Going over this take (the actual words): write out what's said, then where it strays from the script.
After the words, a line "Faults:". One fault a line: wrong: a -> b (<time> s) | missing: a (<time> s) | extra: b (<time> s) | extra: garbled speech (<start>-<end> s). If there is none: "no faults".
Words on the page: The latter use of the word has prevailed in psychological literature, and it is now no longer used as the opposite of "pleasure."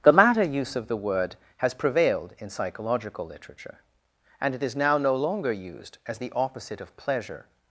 The latter use of the word has prevailed in psychological literature, and it is now no longer used as the opposite of "pleasure."
Faults:
no faults